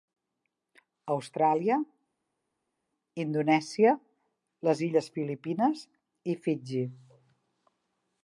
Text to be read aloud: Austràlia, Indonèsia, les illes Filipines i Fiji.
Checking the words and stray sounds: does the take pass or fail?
pass